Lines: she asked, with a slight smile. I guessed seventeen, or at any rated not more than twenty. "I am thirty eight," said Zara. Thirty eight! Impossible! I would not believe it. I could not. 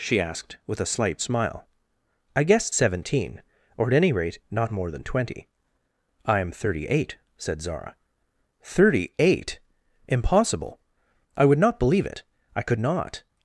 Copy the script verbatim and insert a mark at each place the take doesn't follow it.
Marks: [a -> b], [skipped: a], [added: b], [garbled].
she asked, with a slight smile. I guessed seventeen, or at any [rated -> rate] not more than twenty. "I am thirty eight," said Zara. Thirty eight! Impossible! I would not believe it. I could not.